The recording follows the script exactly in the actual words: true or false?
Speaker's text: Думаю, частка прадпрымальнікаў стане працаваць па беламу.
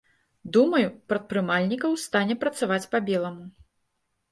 false